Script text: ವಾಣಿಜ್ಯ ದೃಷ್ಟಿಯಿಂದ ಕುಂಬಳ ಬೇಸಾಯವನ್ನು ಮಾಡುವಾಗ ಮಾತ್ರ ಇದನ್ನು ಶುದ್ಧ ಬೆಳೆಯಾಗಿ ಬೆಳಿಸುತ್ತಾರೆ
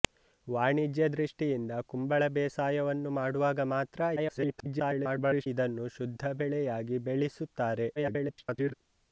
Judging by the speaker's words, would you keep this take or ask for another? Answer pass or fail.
fail